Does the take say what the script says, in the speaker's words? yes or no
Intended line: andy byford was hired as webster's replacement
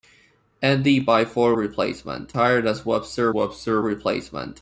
no